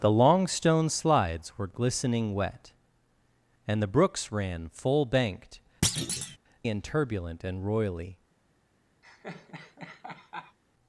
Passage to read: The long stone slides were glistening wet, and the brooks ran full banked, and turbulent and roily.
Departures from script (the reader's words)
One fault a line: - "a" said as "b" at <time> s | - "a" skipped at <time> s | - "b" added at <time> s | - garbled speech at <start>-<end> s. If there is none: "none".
none